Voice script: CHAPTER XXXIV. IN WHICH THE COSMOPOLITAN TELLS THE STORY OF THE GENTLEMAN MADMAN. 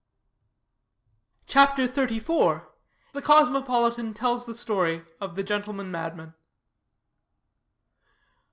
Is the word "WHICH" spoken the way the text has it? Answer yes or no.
no